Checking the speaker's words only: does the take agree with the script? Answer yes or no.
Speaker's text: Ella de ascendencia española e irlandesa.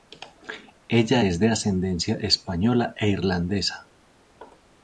no